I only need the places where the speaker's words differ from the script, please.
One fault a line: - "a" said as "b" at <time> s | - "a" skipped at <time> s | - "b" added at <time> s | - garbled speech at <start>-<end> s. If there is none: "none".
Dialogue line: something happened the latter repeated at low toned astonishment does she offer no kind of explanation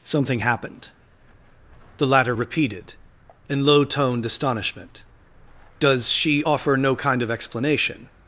- "at" said as "in" at 3.5 s